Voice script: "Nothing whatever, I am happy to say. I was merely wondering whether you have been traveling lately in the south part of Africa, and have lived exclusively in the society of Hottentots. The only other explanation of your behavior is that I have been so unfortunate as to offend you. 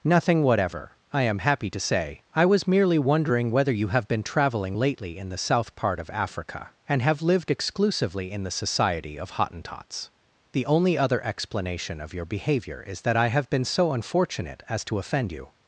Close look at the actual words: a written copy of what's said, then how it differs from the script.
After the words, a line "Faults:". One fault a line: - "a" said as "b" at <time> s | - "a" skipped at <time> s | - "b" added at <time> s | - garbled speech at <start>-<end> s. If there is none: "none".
"Nothing whatever, I am happy to say. I was merely wondering whether you have been traveling lately in the south part of Africa, and have lived exclusively in the society of Hottentots. The only other explanation of your behavior is that I have been so unfortunate as to offend you.
Faults:
none